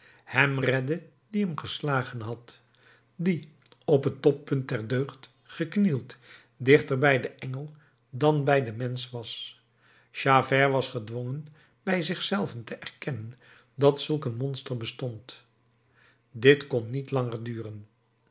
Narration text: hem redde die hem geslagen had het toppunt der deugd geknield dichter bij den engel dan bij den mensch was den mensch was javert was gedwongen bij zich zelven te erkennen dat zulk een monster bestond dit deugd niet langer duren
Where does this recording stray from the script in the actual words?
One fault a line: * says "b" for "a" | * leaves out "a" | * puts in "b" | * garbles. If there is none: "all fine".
* puts in "die op"
* leaves out "den mensch was"
* says "kon" for "deugd"